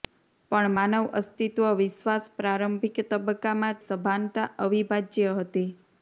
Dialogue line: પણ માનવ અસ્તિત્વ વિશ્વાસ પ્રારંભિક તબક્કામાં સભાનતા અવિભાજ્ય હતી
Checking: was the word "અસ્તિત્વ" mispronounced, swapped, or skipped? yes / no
no